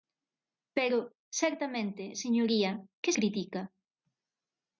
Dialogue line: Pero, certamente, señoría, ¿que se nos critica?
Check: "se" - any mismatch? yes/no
yes